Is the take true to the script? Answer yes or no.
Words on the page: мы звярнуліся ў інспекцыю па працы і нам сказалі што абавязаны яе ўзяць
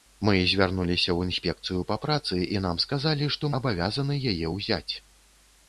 yes